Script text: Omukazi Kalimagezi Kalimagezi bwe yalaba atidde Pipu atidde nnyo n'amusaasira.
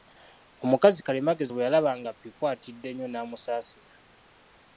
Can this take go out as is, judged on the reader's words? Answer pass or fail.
fail